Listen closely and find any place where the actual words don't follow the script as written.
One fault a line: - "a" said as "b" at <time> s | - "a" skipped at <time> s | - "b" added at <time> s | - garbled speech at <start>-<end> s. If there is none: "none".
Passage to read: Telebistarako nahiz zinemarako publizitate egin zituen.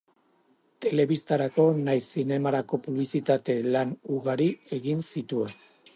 - "lan ugari" added at 3.8 s